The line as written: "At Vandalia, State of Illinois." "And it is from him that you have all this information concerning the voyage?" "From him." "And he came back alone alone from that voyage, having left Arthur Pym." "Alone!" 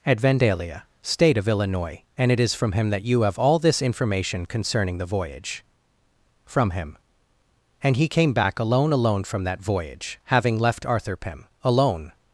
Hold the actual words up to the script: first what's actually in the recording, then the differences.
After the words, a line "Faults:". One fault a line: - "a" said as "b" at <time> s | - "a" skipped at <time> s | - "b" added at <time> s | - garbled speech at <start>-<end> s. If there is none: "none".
"At Vandalia, State of Illinois." "And it is from him that you have all this information concerning the voyage?" "From him." "And he came back alone alone from that voyage, having left Arthur Pym." "Alone!"
Faults:
none